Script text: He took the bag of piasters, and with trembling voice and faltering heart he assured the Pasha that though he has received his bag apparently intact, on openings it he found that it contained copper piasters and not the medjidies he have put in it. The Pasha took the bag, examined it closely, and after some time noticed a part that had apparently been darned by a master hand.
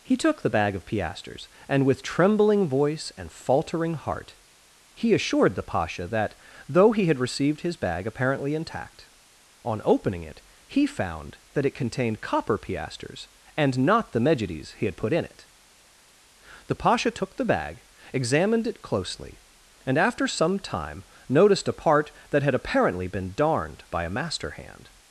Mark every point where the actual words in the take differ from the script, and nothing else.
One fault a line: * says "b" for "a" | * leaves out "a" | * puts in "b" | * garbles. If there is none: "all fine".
* says "had" for "has"
* says "opening" for "openings"
* says "had" for "have"